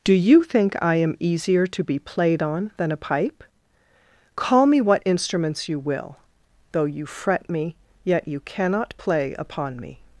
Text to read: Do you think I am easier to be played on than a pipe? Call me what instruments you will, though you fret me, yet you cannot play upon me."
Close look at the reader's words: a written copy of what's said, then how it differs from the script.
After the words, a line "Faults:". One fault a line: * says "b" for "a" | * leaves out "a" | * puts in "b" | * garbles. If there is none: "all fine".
Do you think I am easier to be played on than a pipe? Call me what instruments you will, though you fret me, yet you cannot play upon me."
Faults:
all fine